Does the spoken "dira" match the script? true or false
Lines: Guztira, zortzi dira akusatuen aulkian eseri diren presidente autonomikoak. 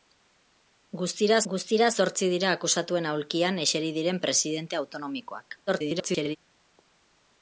true